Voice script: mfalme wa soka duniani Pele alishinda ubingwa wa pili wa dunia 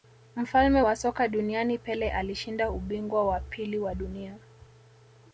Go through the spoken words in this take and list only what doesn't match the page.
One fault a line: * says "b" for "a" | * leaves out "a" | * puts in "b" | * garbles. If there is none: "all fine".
all fine